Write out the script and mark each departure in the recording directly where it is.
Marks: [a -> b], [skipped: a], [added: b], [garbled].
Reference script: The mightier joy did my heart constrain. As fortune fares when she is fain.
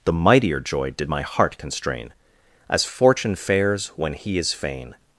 The mightier joy did my heart constrain. As fortune fares when [she -> he] is fain.